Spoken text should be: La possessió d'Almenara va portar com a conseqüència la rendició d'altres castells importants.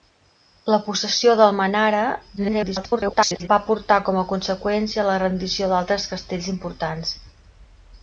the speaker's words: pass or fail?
fail